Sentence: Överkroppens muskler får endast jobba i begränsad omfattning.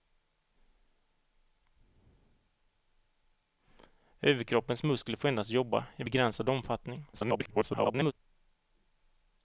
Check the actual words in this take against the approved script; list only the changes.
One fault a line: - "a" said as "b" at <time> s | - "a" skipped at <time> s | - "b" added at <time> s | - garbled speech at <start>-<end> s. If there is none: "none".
- garbled speech at 7.1-8.1 s